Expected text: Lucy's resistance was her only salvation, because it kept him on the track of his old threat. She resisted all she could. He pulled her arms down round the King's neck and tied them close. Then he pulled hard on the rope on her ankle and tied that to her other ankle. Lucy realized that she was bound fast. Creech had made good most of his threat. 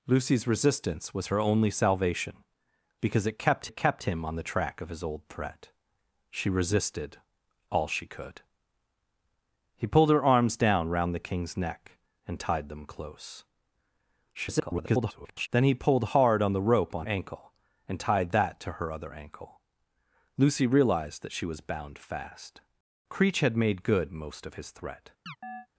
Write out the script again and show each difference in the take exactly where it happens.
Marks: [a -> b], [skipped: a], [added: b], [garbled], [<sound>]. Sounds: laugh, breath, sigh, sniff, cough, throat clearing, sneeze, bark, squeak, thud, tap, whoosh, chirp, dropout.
Lucy's resistance was her only salvation, because it kept [added: it kept] him on the track of his old threat. She resisted all she could. He pulled her arms down round the King's neck and tied them close. [garbled] Then he pulled hard on the rope on [skipped: her] ankle and tied that to her other ankle. Lucy realized that she was bound fast. Creech had made good most of his threat. [chirp]